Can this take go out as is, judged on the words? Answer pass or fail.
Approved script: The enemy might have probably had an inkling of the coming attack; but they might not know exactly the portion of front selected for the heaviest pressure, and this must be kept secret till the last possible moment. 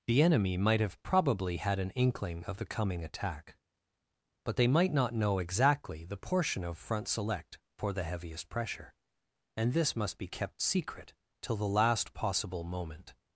fail